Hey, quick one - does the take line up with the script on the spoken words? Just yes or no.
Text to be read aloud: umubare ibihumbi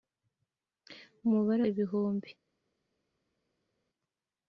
yes